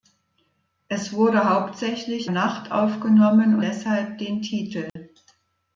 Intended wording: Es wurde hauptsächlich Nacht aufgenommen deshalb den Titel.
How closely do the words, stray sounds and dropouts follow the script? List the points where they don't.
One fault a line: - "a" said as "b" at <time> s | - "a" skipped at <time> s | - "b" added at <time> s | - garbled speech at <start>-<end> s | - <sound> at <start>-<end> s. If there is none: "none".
- dropout at 4.9-5.0 s